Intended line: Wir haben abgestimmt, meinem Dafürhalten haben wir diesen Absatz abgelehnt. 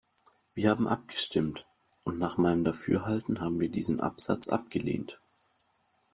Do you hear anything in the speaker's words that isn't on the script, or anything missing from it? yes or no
yes